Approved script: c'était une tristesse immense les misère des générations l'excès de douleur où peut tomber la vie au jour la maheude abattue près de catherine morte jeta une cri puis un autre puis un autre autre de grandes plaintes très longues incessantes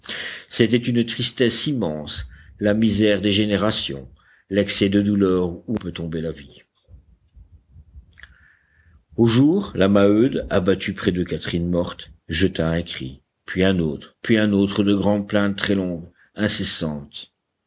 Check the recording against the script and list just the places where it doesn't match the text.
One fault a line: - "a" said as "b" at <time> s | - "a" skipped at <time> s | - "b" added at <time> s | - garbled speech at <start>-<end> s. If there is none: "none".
- "les" said as "la" at 2.6 s
- "une" said as "un" at 12.7 s
- "autre" skipped at 14.8 s